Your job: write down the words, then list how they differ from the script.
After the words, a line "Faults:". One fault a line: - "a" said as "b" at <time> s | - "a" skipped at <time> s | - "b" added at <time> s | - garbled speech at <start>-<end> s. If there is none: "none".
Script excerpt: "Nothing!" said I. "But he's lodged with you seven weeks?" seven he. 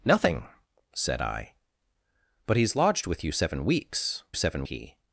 "Nothing!" said I. "But he's lodged with you seven weeks?" seven he.
Faults:
none